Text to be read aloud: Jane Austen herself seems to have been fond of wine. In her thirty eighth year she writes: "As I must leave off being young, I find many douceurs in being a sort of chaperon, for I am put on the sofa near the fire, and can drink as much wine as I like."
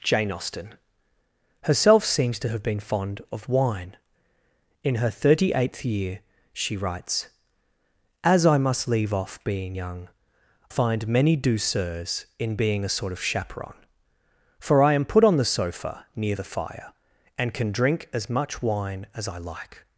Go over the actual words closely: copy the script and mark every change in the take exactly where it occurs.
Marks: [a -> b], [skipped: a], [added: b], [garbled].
Jane Austen herself seems to have been fond of wine. In her thirty eighth year she writes: "As I must leave off being young, [skipped: I] find many douceurs in being a sort of chaperon, for I am put on the sofa near the fire, and can drink as much wine as I like."